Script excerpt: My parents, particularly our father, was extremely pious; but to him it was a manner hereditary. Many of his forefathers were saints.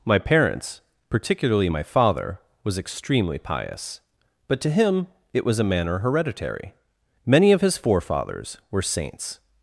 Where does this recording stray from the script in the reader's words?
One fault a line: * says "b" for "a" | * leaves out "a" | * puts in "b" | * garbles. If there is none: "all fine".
* says "my" for "our"